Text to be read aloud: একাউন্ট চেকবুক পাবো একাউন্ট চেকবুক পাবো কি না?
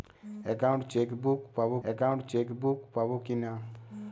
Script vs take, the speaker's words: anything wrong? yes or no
no